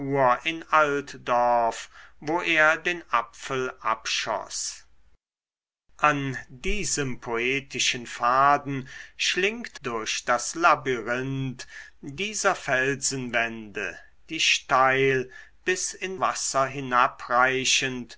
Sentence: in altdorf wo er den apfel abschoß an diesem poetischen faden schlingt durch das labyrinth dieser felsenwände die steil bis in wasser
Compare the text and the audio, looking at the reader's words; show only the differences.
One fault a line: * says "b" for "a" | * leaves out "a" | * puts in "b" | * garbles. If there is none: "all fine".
all fine